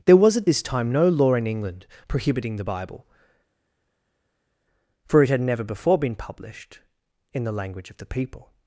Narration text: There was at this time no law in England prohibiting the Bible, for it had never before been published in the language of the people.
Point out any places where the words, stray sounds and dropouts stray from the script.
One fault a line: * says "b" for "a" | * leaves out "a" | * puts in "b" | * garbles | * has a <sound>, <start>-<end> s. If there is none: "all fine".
all fine